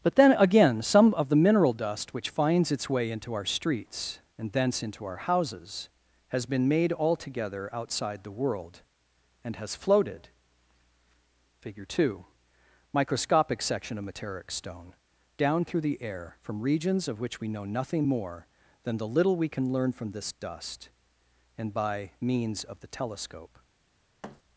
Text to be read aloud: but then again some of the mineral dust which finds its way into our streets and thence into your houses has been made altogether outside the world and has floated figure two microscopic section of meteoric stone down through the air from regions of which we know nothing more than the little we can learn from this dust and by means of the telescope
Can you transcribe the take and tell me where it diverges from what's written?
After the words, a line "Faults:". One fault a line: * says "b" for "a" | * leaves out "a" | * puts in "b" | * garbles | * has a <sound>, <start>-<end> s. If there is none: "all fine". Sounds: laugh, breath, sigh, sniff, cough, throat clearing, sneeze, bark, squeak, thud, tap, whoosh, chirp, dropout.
but then again some of the mineral dust which finds its way into our streets and thence into our houses has been made altogether outside the world and has floated figure two microscopic section of meteoric stone down through the air from regions of which we know nothing more than the little we can learn from this dust and by means of the telescope
Faults:
* says "our" for "your"
* has a thud, 24.2-24.4 s